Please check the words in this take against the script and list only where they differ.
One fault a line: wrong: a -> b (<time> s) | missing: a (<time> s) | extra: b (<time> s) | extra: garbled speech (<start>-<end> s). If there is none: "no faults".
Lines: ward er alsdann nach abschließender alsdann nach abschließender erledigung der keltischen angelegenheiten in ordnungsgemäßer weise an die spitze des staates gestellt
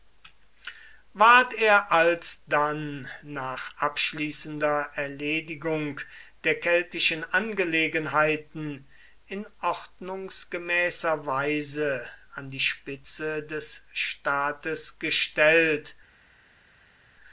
missing: alsdann nach abschließender (4.9 s)